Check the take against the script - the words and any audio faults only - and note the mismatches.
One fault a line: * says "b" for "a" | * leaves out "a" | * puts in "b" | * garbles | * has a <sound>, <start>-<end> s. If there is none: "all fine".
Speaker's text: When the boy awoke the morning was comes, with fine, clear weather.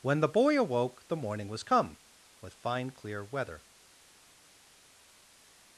* says "come" for "comes"